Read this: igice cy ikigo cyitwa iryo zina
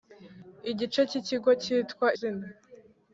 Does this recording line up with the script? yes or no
no